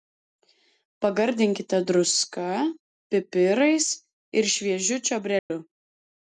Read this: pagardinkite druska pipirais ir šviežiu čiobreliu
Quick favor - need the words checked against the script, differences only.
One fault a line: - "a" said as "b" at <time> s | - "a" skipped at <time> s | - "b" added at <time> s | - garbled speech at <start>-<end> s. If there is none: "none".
none